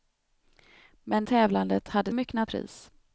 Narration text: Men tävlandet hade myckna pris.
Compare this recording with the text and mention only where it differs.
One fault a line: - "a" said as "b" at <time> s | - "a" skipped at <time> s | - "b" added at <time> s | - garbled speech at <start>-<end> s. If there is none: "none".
none